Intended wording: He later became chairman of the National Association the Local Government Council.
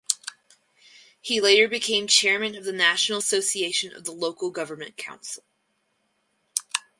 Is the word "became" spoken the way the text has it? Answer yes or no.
yes